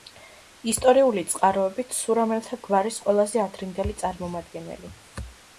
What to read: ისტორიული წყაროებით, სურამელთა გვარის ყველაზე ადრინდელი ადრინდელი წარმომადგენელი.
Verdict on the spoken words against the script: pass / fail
fail